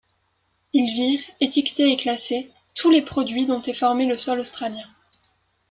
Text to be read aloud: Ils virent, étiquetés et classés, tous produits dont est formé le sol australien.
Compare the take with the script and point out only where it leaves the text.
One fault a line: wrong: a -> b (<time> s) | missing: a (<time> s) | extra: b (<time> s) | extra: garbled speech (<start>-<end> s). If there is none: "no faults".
extra: les (2.9 s)